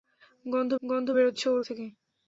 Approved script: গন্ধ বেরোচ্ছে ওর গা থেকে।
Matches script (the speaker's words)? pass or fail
fail